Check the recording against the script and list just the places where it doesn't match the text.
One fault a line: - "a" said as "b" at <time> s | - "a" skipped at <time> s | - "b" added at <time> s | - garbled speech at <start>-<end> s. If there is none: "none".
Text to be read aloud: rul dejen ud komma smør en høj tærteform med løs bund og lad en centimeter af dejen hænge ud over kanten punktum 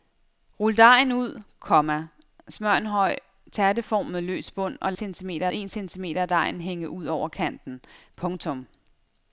- "lad" said as "centimeter" at 4.9 s